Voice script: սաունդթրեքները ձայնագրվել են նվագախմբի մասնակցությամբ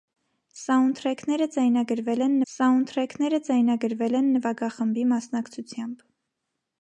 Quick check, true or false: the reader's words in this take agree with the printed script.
false